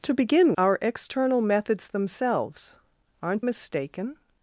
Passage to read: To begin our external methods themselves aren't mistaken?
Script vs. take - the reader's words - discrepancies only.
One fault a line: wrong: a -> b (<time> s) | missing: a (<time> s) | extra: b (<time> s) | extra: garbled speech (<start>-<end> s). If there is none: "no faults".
no faults